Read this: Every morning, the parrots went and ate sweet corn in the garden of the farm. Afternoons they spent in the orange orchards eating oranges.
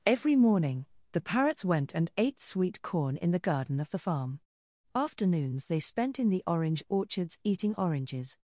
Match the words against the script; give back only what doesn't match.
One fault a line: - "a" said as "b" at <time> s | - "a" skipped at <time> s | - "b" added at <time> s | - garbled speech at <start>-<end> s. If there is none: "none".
none